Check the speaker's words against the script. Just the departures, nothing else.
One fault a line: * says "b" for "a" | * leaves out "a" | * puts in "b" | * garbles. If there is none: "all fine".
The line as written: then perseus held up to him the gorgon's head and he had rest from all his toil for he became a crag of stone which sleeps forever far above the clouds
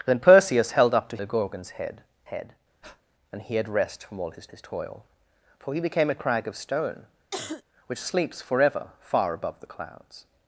* leaves out "him"
* puts in "head"
* puts in "his"